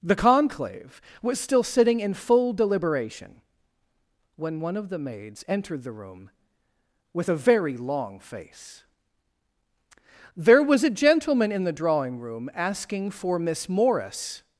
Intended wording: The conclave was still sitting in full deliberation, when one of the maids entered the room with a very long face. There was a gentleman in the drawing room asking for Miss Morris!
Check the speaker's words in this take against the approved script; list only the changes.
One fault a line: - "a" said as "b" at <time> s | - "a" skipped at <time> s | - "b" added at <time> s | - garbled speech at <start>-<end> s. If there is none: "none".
none